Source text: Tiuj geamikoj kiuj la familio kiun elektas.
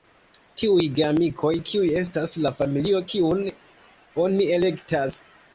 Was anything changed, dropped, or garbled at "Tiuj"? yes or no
no